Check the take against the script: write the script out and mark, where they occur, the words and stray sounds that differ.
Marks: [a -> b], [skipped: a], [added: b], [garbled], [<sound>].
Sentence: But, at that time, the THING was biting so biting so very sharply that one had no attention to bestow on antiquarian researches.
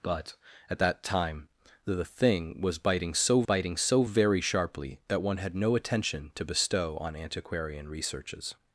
But, at that time, the THING was biting so biting so very sharply that one had no attention to bestow on antiquarian researches.